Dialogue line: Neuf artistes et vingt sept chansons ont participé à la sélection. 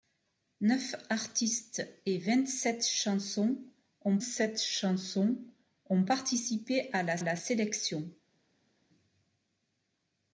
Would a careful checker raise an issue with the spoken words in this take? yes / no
yes